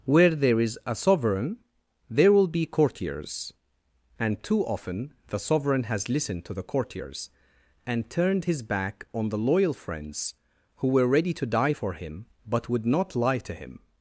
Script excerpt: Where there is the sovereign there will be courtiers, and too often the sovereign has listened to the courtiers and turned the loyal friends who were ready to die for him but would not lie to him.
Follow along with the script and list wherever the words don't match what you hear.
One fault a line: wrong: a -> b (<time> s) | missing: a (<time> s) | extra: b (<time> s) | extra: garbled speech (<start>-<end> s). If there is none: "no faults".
wrong: the -> a (0.8 s)
extra: his back on (8.4 s)